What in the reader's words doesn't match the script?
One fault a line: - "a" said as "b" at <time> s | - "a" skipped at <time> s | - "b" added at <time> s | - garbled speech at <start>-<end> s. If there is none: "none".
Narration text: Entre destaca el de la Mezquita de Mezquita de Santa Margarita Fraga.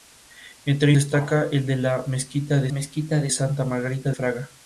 none